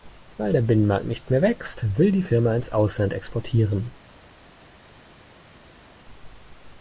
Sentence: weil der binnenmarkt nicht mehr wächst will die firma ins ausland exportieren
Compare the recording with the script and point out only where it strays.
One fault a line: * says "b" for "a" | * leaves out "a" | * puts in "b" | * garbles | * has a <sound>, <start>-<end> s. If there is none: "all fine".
all fine